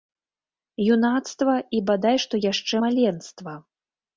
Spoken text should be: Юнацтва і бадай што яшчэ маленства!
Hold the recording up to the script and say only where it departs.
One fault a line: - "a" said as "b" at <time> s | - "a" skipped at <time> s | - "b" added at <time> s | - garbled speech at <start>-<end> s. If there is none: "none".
none